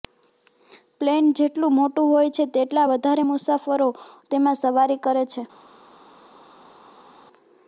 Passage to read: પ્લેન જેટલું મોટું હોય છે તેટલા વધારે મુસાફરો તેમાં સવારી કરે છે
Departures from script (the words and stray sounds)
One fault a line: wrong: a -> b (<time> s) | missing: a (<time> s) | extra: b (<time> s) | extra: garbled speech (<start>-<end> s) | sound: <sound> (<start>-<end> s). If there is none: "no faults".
no faults